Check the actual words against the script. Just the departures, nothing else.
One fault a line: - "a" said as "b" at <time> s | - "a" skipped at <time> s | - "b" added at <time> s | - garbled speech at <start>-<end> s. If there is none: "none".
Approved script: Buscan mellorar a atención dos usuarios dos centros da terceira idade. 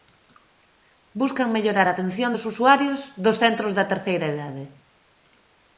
none